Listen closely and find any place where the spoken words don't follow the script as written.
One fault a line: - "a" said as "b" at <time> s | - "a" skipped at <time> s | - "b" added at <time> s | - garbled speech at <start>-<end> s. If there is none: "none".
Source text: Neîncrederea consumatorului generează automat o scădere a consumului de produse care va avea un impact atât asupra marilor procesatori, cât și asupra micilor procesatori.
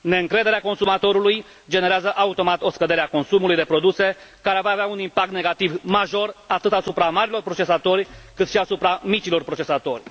- "negativ major" added at 5.3 s